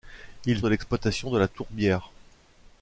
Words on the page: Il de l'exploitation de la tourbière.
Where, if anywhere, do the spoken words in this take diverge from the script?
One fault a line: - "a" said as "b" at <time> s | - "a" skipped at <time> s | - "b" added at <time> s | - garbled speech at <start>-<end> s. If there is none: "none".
none